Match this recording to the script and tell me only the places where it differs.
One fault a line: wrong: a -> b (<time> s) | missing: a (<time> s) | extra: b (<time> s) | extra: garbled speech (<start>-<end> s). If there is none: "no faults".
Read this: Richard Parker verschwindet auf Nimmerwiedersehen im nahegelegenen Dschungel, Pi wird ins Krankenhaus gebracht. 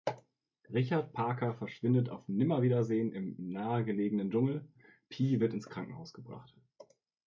no faults